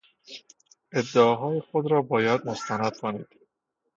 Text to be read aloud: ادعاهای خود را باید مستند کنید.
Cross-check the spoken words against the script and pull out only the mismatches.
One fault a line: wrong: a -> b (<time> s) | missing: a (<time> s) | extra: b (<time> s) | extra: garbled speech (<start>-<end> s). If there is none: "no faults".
no faults